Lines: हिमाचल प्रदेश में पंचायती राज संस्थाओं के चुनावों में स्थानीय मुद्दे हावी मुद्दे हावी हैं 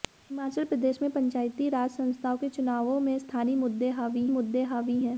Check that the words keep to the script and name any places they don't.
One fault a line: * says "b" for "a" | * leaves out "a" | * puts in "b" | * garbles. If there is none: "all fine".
all fine